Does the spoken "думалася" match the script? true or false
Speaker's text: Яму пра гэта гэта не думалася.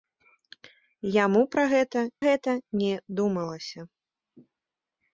true